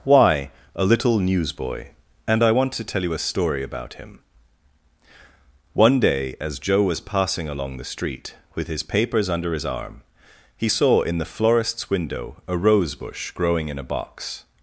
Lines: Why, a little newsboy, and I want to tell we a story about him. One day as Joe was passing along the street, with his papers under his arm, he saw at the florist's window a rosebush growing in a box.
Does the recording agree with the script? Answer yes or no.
no